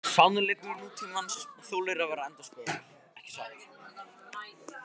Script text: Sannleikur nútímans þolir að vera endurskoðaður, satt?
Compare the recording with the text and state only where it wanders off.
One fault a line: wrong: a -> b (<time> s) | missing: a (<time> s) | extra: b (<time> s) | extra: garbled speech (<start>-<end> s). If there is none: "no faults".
extra: ekki (3.2 s)